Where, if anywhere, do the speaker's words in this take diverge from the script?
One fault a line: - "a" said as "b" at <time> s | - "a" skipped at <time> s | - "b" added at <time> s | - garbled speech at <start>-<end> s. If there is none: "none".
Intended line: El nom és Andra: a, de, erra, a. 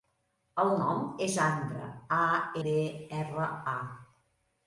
none